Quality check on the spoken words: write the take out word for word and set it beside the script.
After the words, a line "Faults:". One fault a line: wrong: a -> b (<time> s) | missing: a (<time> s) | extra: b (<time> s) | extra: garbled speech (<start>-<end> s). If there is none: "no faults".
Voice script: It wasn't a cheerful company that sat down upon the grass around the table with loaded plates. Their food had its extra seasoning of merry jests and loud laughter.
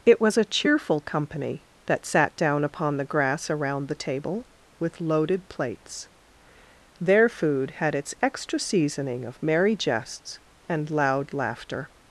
It was a cheerful company that sat down upon the grass around the table with loaded plates. Their food had its extra seasoning of merry jests and loud laughter.
Faults:
wrong: wasn't -> was (0.2 s)